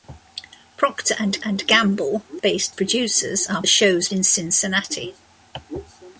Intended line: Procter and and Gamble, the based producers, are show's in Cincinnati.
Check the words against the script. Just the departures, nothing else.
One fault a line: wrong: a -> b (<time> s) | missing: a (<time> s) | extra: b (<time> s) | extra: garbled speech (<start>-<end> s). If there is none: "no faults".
no faults